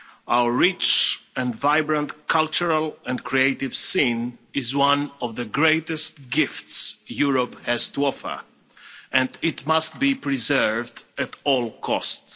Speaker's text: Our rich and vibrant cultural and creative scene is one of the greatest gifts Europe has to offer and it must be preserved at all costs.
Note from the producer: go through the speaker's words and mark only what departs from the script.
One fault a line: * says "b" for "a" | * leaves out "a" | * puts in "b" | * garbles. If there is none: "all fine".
all fine